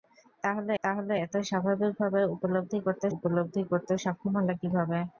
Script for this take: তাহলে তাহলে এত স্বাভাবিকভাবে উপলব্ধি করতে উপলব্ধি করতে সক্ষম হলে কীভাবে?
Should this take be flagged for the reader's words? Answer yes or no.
no